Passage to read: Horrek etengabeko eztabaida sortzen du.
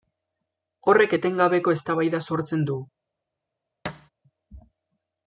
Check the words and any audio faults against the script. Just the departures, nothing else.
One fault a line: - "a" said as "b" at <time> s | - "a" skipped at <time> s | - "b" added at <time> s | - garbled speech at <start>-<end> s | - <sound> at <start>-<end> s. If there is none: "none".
- thud at 3.8-4.1 s